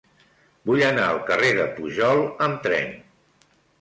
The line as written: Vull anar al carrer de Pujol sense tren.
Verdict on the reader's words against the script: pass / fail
fail